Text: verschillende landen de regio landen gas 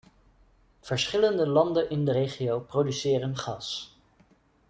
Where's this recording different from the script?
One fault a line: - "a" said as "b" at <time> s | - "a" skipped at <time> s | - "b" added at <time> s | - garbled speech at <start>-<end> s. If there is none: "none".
- "in" added at 1.9 s
- "landen" said as "produceren" at 2.6 s